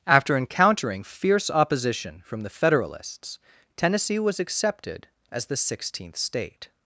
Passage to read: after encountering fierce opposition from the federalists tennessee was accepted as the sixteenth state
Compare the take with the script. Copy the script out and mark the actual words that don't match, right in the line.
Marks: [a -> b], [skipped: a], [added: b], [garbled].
after encountering fierce opposition from the federalists tennessee was accepted as the sixteenth state